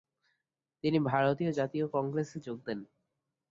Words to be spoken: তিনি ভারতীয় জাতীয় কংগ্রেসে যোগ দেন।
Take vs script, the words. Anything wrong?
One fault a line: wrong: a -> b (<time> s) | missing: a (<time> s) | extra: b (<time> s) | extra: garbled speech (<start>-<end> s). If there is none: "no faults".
no faults